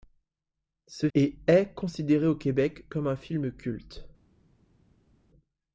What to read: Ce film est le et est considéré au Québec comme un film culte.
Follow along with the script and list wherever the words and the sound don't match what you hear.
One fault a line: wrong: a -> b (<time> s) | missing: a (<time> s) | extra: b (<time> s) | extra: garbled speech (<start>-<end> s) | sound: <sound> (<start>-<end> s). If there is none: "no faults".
missing: film est le (1.1 s)